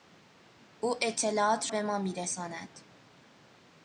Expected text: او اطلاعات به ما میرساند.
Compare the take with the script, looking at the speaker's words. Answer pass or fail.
pass